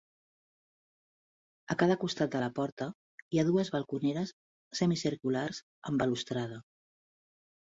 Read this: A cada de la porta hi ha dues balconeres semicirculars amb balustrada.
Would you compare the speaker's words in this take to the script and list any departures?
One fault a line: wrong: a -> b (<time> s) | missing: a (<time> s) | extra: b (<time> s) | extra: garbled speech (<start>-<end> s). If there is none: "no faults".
extra: costat (2.0 s)